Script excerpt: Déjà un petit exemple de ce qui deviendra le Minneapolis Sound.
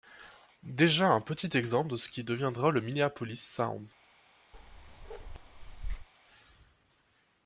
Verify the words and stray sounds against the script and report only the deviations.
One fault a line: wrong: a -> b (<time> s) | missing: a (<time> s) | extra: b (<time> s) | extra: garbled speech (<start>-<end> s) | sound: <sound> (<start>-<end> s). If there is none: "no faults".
sound: bark (4.5-6.1 s)